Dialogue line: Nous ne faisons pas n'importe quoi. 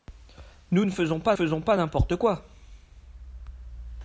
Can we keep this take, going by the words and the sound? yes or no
no